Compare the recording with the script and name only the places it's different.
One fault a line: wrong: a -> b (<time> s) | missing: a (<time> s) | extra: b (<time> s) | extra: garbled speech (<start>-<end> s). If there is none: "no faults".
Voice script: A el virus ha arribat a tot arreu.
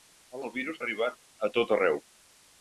no faults